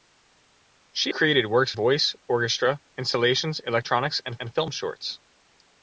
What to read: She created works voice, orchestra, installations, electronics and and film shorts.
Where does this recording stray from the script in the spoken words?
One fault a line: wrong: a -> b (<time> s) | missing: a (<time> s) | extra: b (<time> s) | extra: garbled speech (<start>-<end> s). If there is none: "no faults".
no faults